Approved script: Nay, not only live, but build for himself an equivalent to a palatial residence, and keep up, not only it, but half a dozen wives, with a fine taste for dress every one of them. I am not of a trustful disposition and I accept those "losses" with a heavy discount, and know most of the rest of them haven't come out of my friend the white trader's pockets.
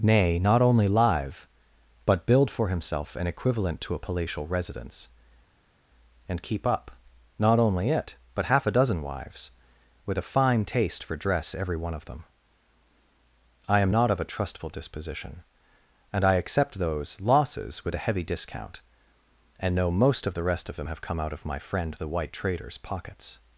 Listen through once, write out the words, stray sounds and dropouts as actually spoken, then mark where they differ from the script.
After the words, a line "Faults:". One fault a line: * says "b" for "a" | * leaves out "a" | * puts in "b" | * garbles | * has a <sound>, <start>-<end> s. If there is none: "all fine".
Nay, not only live, but build for himself an equivalent to a palatial residence, and keep up, not only it, but half a dozen wives, with a fine taste for dress every one of them. I am not of a trustful disposition and I accept those "losses" with a heavy discount, and know most of the rest of them have come out of my friend the white trader's pockets.
Faults:
* says "have" for "haven't"